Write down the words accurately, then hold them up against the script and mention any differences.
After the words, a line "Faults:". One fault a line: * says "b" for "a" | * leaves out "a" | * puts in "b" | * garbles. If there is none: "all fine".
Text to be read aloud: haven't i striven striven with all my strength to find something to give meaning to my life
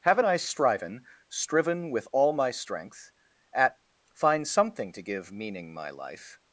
haven't i striven striven with all my strength at find something to give meaning my life
Faults:
* says "at" for "to"
* leaves out "to"